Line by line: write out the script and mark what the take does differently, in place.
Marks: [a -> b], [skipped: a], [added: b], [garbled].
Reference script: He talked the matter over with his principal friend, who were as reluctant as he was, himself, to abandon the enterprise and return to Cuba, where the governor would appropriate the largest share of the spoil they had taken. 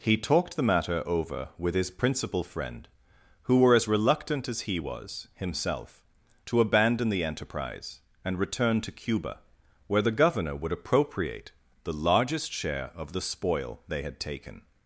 He talked the matter over with his principal friend, who were as reluctant as he was, himself, to abandon the enterprise and return to Cuba, where the governor would appropriate the largest share of the spoil they had taken.